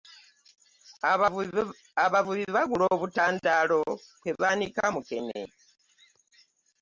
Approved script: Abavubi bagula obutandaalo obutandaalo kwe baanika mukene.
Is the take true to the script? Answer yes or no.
no